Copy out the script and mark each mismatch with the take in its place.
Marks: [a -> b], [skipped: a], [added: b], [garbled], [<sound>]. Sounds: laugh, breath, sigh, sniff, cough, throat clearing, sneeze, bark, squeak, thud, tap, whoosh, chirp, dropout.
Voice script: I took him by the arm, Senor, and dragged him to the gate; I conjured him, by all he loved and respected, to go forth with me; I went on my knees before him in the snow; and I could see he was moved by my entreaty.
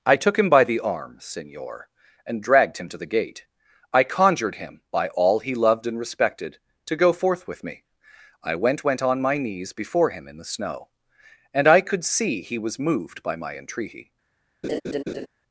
I took him by the arm, Senor, and dragged him to the gate; I conjured him, by all he loved and respected, to go forth with me; I went [added: went] on my knees before him in the snow; and I could see he was moved by my entreaty. [laugh]